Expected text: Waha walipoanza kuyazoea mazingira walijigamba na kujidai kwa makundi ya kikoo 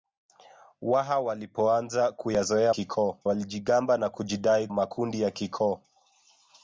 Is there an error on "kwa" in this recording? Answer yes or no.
yes